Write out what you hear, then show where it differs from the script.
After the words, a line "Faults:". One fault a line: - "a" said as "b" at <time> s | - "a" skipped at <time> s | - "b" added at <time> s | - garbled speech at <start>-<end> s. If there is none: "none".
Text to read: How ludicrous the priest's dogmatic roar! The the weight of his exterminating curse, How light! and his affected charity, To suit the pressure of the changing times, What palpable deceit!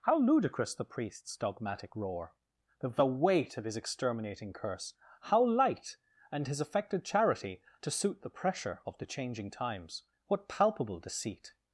How ludicrous the priest's dogmatic roar! The the weight of his exterminating curse, How light! and his affected charity, To suit the pressure of the changing times, What palpable deceit!
Faults:
none